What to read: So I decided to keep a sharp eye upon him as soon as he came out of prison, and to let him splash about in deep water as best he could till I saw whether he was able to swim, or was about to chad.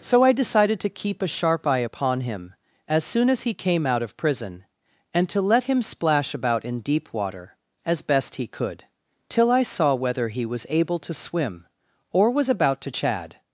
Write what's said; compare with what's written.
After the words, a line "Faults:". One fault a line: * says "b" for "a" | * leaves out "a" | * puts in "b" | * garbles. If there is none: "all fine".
So I decided to keep a sharp eye upon him as soon as he came out of prison, and to let him splash about in deep water as best he could till I saw whether he was able to swim, or was about to chad.
Faults:
all fine